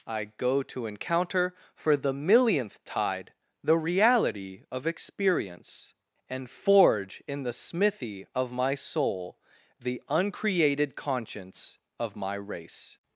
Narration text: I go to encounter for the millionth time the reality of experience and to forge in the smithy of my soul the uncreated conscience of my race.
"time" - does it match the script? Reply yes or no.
no